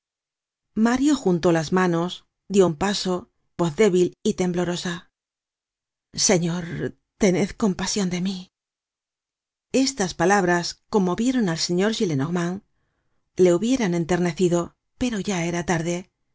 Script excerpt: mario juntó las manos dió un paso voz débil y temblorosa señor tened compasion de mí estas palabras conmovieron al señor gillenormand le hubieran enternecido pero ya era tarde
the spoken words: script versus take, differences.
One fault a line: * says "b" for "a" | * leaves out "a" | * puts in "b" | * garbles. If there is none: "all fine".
all fine